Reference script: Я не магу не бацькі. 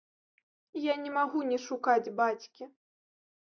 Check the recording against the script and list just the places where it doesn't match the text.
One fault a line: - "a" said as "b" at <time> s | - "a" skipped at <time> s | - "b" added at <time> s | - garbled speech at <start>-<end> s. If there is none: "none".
- "шукаць" added at 1.7 s